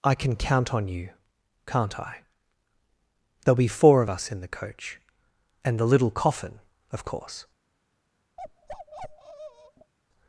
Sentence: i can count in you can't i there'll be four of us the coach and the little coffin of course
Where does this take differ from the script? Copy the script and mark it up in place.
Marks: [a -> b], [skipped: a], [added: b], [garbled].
i can count [in -> on] you can't i there'll be four of us [added: in] the coach and the little coffin of course